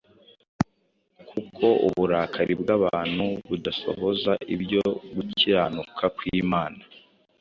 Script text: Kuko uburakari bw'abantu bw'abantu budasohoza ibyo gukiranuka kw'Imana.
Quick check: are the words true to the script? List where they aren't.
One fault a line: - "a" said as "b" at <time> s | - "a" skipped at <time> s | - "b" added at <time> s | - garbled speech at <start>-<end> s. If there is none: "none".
- "bw'abantu" skipped at 3.2 s